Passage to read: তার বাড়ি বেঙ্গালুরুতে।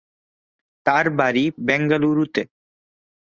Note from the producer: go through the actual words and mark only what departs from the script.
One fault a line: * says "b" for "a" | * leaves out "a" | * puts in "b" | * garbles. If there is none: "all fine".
all fine